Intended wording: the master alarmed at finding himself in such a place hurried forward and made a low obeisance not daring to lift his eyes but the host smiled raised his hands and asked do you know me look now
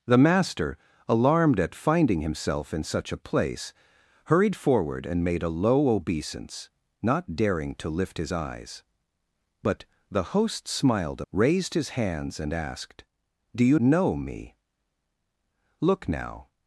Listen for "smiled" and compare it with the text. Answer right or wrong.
right